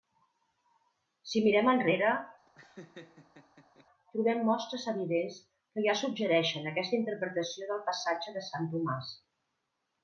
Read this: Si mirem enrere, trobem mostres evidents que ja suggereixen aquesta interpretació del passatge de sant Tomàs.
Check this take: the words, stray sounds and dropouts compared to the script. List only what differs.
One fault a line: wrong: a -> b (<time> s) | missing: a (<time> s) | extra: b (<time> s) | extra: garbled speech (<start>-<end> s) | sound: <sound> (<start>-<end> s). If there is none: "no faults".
sound: laugh (2.5-3.9 s)